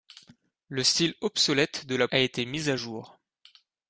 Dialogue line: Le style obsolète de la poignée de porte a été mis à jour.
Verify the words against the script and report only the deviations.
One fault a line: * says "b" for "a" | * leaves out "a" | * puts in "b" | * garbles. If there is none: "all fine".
* leaves out "poignée de porte"